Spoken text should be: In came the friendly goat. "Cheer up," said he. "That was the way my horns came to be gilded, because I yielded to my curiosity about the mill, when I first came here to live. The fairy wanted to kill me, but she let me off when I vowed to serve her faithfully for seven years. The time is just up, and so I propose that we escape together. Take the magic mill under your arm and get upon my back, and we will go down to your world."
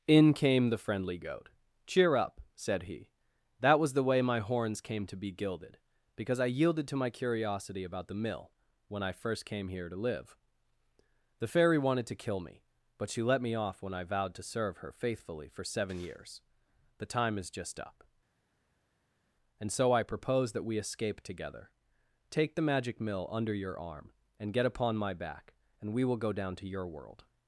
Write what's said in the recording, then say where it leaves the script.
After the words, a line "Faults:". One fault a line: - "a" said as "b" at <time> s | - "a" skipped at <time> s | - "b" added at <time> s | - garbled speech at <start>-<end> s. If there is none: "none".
In came the friendly goat. "Cheer up," said he. "That was the way my horns came to be gilded, because I yielded to my curiosity about the mill, when I first came here to live. The fairy wanted to kill me, but she let me off when I vowed to serve her faithfully for seven years. The time is just up, and so I propose that we escape together. Take the magic mill under your arm and get upon my back, and we will go down to your world."
Faults:
none